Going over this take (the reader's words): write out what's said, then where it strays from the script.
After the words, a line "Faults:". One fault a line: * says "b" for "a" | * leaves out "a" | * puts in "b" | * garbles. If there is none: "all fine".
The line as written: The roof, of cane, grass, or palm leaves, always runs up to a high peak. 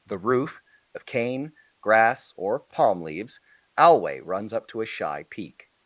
The roof, of cane, grass, or palm leaves, alway runs up to a shy peak.
Faults:
* says "alway" for "always"
* says "shy" for "high"